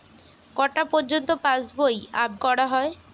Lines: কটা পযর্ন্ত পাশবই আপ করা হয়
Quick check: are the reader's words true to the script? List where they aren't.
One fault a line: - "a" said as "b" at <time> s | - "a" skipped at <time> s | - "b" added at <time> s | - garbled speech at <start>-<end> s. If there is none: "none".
none